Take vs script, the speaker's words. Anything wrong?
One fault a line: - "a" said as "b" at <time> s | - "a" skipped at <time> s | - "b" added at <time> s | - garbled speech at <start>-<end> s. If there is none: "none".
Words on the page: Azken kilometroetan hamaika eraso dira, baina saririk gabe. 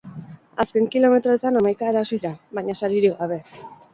none